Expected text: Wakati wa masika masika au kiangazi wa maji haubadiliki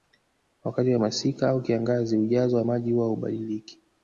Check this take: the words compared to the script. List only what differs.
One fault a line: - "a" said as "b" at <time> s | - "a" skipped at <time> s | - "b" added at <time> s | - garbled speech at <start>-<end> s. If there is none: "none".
- "masika" skipped at 1.5 s
- "ujazo" added at 2.2 s
- "huwa" added at 2.9 s